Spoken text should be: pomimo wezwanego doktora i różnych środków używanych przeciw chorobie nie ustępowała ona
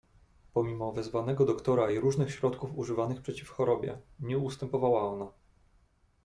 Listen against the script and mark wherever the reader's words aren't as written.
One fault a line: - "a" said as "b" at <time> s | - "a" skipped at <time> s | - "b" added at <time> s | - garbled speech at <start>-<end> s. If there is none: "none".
none